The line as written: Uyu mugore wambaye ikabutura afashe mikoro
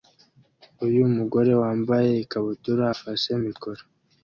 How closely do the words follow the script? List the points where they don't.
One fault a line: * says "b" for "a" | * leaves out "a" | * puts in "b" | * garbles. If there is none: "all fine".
all fine